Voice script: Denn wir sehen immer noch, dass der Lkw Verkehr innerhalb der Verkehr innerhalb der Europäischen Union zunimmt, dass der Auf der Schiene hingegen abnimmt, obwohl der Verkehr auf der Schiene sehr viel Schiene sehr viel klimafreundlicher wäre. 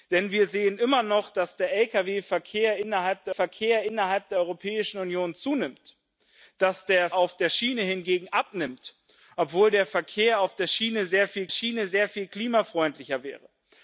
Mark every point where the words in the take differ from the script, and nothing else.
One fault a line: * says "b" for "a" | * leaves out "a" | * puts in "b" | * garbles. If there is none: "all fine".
all fine